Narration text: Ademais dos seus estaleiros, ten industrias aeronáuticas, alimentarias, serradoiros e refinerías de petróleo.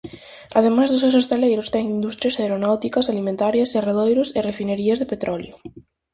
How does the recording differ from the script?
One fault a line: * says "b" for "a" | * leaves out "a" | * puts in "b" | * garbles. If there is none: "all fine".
all fine